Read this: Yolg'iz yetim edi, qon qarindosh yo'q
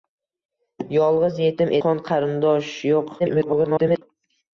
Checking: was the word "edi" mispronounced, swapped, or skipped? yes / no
yes